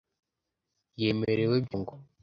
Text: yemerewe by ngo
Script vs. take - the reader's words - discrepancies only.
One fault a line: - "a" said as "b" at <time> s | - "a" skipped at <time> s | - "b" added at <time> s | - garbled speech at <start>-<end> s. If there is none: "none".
none